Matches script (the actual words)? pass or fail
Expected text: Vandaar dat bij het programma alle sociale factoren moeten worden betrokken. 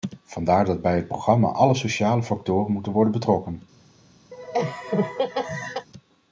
pass